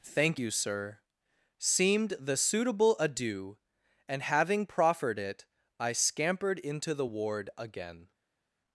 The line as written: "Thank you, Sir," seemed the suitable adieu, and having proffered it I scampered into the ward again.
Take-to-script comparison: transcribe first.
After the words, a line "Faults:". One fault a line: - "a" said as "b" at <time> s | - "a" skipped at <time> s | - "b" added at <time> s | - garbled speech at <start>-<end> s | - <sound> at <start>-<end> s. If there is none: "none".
"Thank you, Sir," seemed the suitable adieu, and having proffered it I scampered into the ward again.
Faults:
none